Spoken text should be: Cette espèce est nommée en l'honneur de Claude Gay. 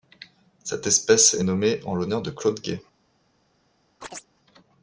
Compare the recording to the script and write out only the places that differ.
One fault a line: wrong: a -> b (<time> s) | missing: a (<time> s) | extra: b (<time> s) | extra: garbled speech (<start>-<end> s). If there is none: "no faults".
no faults